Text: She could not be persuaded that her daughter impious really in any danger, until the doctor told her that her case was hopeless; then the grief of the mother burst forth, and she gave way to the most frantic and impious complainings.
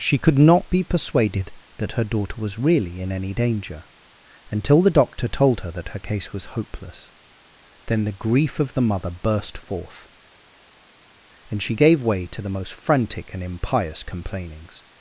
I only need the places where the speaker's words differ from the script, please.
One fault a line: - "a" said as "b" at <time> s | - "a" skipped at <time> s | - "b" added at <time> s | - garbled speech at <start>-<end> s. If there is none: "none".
- "impious" said as "was" at 2.4 s